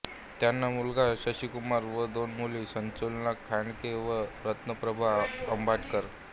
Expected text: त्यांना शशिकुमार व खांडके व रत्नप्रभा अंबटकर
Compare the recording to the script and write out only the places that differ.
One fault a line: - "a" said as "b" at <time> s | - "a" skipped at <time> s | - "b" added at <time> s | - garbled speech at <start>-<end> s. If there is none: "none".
- "मुलगा" added at 0.7 s
- "दोन मुली सुलोचना" added at 2.1 s